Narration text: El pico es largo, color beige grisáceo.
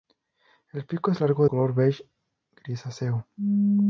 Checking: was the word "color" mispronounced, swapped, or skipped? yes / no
no